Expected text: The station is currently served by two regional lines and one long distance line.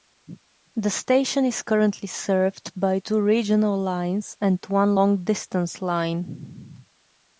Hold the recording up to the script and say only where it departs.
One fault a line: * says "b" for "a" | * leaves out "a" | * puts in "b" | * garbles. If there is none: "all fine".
all fine